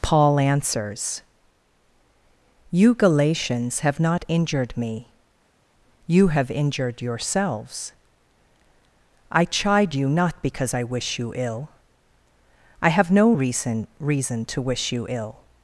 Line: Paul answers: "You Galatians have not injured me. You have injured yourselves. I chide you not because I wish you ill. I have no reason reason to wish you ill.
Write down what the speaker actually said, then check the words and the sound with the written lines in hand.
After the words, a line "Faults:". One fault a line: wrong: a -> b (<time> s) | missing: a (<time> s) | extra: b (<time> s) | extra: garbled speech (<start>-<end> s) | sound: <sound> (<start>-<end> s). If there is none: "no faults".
Paul answers: "You Galatians have not injured me. You have injured yourselves. I chide you not because I wish you ill. I have no reason reason to wish you ill.
Faults:
no faults